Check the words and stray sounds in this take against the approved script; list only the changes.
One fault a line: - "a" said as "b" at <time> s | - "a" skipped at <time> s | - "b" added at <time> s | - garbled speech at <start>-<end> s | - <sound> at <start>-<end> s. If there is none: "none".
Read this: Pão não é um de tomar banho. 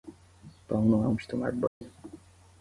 - dropout at 1.7-1.8 s